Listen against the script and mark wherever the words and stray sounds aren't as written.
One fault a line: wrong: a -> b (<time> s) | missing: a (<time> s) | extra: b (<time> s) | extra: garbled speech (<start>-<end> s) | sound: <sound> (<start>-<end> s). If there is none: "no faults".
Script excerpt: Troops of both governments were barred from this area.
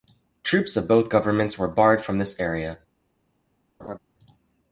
sound: laugh (3.8-4.0 s)